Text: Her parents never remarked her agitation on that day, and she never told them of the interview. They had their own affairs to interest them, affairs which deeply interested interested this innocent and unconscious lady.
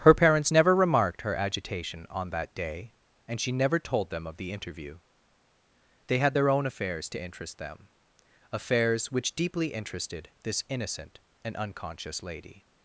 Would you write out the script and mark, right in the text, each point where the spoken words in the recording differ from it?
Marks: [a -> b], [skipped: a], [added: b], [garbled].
Her parents never remarked her agitation on that day, and she never told them of the interview. They had their own affairs to interest them, affairs which deeply interested [skipped: interested] this innocent and unconscious lady.